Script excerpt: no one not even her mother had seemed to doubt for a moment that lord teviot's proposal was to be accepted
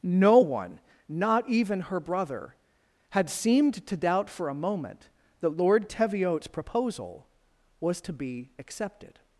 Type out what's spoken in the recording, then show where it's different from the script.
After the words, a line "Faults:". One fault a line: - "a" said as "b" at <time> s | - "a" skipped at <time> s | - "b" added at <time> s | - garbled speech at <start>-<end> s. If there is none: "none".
no one not even her brother had seemed to doubt for a moment that lord teviot's proposal was to be accepted
Faults:
- "mother" said as "brother" at 2.0 s